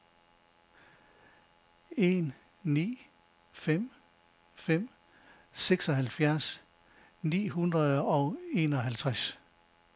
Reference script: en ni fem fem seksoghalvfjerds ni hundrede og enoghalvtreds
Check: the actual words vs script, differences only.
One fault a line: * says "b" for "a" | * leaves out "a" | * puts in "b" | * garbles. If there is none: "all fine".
all fine